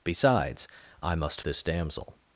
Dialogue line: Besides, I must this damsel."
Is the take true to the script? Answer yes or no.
yes